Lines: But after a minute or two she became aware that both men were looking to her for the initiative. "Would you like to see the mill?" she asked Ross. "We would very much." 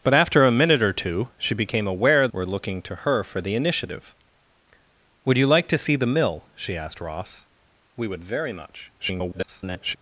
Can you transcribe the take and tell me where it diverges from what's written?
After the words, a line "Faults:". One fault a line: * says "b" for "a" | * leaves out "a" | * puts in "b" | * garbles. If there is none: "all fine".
But after a minute or two she became aware were looking to her for the initiative. "Would you like to see the mill?" she asked Ross. "We would very much." [garbled]
Faults:
* leaves out "that both men"
* garbles